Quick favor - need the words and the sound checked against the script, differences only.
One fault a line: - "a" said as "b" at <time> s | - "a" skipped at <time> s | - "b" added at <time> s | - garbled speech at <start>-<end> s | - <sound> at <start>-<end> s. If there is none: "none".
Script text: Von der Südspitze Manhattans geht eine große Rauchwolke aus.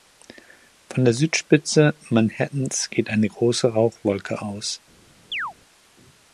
- chirp at 5.3-5.5 s